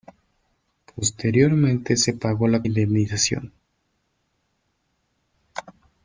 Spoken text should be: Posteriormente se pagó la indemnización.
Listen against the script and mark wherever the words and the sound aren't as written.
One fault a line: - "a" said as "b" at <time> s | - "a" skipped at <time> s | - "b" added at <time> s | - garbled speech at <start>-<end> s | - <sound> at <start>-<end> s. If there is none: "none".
none